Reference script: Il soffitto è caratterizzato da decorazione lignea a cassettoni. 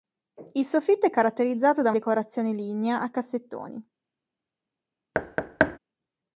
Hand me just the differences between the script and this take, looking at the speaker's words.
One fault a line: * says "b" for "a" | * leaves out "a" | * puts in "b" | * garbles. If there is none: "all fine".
all fine